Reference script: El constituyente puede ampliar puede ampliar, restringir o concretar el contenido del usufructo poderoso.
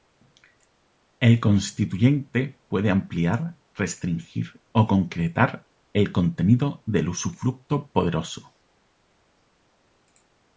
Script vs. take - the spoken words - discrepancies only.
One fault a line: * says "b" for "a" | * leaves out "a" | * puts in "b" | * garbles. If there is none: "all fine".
* leaves out "puede ampliar"